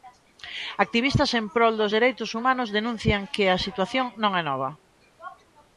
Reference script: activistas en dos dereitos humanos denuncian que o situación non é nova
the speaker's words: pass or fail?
fail